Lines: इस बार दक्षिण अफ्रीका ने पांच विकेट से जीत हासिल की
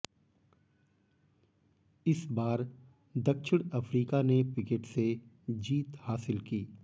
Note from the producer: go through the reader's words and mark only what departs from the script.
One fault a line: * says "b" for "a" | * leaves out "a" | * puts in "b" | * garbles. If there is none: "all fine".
* leaves out "पांच"